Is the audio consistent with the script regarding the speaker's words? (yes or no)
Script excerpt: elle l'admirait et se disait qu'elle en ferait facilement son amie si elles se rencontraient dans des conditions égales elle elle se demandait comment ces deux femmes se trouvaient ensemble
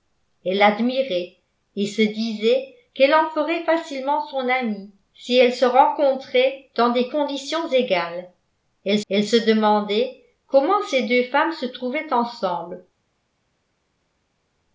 yes